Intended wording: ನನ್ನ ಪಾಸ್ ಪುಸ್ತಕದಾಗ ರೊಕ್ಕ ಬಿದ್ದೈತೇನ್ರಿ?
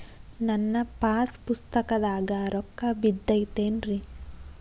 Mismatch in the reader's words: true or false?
false